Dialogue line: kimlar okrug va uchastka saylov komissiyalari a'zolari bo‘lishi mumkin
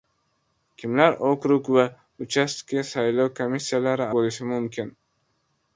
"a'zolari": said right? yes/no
no